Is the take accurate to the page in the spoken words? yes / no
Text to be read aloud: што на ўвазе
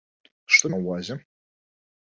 yes